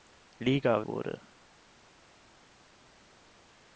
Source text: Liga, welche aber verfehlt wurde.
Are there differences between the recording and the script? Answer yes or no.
yes